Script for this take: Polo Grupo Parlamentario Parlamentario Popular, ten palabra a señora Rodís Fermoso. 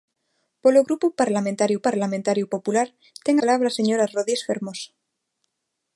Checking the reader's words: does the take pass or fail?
pass